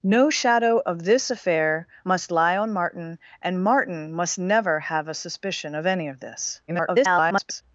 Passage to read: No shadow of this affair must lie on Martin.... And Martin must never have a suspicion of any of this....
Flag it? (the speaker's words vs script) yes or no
yes